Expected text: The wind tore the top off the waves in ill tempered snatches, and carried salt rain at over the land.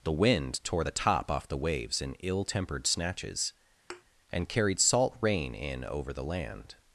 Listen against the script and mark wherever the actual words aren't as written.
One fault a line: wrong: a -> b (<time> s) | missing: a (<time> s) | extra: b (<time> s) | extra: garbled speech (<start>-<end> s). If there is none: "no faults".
wrong: at -> in (5.6 s)